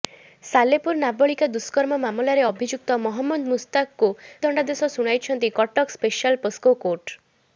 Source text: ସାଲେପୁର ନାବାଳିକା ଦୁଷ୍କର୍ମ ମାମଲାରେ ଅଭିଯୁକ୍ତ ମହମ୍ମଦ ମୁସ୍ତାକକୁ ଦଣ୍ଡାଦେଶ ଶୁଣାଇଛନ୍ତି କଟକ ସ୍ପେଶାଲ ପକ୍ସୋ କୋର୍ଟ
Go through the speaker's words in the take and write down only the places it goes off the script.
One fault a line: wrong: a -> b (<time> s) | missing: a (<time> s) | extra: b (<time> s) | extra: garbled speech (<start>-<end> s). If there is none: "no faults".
no faults